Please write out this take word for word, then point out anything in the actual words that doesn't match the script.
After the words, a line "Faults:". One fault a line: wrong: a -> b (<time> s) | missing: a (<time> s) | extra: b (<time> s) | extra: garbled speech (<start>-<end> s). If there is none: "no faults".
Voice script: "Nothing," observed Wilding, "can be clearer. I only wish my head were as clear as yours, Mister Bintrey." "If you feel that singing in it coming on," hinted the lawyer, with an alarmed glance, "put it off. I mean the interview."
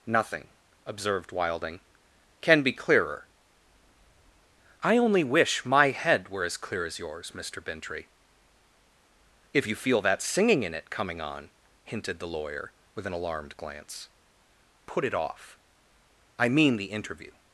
"Nothing," observed Wilding, "can be clearer. I only wish my head were as clear as yours, Mister Bintrey." "If you feel that singing in it coming on," hinted the lawyer, with an alarmed glance, "put it off. I mean the interview."
Faults:
no faults